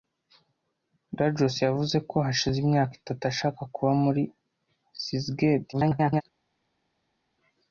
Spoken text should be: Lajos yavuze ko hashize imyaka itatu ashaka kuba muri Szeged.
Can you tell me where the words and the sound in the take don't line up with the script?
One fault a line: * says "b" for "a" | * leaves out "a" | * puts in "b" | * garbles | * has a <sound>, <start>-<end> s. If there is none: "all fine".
* garbles